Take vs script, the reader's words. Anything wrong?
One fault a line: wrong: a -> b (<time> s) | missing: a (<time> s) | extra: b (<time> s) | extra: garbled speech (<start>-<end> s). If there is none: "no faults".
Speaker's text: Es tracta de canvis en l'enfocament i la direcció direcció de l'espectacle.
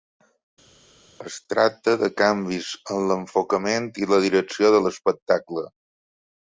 missing: direcció (4.7 s)